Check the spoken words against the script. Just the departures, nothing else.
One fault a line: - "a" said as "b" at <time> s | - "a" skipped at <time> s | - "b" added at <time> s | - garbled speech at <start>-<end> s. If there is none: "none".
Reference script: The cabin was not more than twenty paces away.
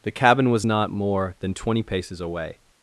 none